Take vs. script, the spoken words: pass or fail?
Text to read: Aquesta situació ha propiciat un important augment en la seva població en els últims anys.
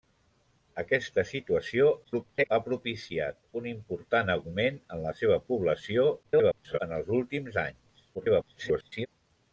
fail